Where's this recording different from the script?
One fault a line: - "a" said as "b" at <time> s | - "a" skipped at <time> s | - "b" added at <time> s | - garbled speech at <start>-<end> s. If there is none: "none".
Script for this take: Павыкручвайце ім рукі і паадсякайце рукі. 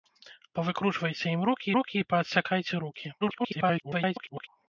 - "рукі" added at 1.8 s
- garbled speech at 3.2-4.5 s